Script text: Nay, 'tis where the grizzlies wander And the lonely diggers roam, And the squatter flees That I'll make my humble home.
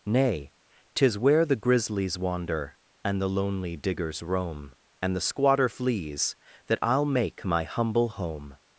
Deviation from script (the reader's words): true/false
false